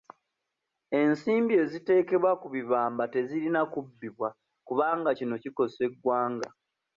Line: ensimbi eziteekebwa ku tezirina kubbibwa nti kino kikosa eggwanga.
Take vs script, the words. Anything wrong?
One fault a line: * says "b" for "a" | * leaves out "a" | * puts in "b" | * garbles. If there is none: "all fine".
* puts in "bibamba"
* says "kubanga" for "nti"